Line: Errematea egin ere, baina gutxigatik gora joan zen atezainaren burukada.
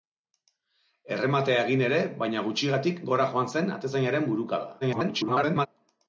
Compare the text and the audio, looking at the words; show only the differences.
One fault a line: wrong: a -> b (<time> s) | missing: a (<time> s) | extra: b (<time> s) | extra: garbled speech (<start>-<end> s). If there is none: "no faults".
extra: garbled speech (4.8-5.7 s)